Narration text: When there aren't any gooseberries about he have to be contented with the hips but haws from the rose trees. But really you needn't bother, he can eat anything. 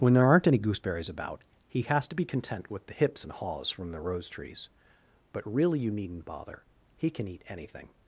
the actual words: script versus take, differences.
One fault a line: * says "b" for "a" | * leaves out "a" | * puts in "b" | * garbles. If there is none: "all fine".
* says "has" for "have"
* says "content" for "contented"
* says "and" for "but"